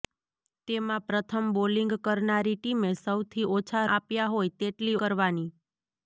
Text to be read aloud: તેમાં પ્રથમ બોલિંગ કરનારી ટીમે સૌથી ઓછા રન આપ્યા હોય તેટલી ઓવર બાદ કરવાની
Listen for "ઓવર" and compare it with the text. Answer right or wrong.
wrong